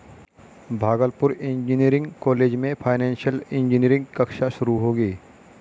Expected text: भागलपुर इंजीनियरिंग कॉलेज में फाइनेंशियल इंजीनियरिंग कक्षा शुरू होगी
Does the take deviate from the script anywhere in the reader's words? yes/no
no